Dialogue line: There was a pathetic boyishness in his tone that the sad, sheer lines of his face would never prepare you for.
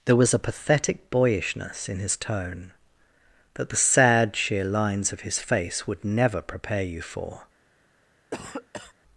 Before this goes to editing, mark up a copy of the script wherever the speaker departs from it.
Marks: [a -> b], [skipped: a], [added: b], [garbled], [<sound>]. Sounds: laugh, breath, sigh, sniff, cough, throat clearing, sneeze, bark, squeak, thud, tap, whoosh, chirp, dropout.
There was a pathetic boyishness in his tone that the sad, sheer lines of his face would never prepare you for. [cough]